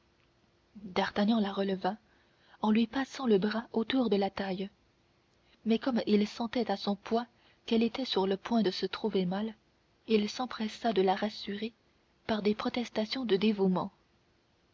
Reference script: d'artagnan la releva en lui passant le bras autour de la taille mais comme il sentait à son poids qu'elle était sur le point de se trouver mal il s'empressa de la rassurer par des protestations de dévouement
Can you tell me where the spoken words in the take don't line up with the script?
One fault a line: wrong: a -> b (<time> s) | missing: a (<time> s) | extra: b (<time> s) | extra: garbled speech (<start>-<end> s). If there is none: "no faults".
no faults